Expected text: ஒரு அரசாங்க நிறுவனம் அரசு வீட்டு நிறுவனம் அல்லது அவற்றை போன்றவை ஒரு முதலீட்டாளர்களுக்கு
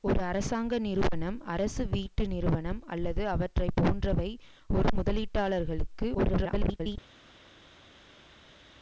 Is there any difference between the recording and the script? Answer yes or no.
yes